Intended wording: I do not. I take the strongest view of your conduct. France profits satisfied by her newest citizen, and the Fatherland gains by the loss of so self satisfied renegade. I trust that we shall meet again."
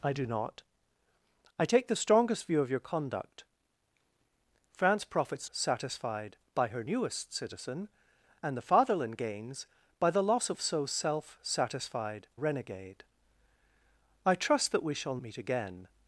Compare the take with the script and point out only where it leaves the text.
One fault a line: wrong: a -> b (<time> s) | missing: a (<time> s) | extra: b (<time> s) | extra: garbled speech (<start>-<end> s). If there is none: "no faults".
no faults